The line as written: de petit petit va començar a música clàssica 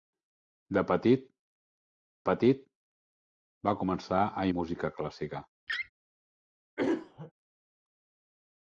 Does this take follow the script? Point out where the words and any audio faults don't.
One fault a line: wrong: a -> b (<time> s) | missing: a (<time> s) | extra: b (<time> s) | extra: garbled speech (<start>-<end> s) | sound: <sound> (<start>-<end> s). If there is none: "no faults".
sound: laugh (5.7-5.9 s)
sound: throat clearing (6.8-7.3 s)